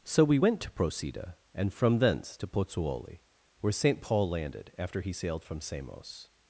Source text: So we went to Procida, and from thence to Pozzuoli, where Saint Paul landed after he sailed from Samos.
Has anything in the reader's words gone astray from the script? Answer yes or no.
no